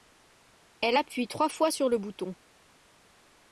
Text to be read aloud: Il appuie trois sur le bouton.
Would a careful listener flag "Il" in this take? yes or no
yes